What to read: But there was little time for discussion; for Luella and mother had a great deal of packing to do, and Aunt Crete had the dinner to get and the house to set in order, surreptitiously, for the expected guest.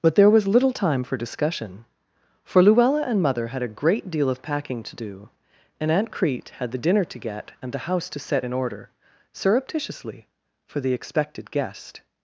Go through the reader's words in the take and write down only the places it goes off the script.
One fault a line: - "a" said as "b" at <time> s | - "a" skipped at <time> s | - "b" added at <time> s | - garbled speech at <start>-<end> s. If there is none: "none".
none